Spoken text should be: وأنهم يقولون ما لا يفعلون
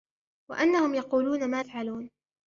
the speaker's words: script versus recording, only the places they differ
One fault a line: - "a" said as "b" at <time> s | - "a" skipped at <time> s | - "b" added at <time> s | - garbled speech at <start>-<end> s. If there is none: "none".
- "لا" skipped at 1.6 s